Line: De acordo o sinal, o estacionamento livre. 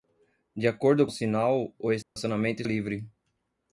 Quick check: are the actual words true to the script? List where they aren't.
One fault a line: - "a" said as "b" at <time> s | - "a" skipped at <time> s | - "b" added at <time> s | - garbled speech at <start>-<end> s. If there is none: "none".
none